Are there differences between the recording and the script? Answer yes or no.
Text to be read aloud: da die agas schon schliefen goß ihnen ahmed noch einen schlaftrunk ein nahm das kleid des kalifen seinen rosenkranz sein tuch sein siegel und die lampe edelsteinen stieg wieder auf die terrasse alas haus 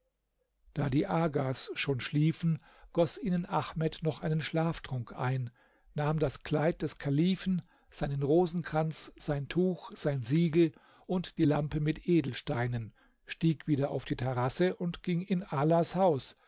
yes